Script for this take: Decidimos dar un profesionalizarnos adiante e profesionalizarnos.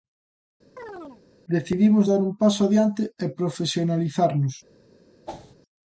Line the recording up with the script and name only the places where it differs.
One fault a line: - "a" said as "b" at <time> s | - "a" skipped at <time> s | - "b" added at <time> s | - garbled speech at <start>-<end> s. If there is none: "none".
- "profesionalizarnos" said as "paso" at 2.4 s